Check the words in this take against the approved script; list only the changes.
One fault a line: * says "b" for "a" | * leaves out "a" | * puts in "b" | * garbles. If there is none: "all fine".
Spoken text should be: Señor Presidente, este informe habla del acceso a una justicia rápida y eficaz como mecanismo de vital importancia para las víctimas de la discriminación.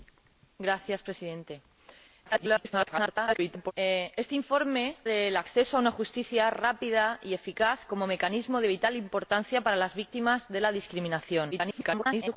* garbles
* leaves out "habla"
* garbles